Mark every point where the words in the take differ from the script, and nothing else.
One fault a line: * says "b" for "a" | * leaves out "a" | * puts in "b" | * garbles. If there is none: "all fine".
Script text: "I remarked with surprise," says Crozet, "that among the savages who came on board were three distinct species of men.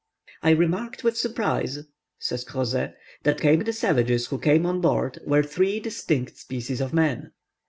* says "came" for "among"